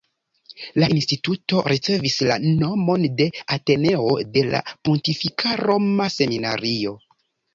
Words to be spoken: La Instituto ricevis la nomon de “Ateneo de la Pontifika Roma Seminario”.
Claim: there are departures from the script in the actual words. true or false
false